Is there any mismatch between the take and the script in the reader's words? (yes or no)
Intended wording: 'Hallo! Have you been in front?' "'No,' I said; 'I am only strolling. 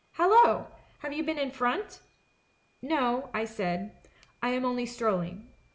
no